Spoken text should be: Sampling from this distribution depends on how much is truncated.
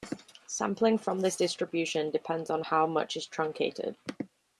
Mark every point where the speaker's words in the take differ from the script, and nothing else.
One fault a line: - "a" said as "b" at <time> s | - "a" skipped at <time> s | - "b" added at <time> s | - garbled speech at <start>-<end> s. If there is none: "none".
none